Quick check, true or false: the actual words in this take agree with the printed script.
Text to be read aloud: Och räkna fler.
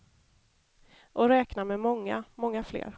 false